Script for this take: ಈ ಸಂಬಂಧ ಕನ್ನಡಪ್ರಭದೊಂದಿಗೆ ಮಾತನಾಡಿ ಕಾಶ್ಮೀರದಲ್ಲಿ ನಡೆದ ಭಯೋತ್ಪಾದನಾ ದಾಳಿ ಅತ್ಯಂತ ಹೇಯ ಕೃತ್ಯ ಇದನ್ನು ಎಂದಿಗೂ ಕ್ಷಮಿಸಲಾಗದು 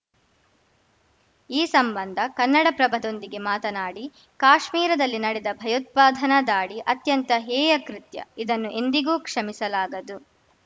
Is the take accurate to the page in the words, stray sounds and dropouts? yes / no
yes